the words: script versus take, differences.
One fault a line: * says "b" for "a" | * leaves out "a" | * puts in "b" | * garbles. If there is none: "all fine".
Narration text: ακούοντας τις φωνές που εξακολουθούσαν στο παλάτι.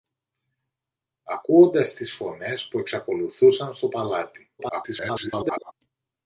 * garbles